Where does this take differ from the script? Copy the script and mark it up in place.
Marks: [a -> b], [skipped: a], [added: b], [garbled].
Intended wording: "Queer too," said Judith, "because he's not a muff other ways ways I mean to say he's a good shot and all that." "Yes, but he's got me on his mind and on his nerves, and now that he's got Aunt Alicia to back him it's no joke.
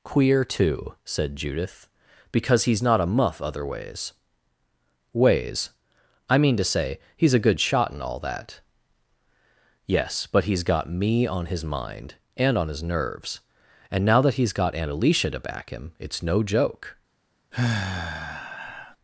"Queer too," said Judith, "because he's not a muff other ways ways I mean to say he's a good shot and all that." "Yes, but he's got me on his mind and on his nerves, and now that he's got Aunt Alicia to back him it's no joke.